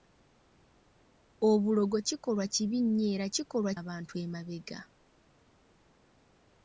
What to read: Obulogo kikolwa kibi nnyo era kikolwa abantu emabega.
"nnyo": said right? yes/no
yes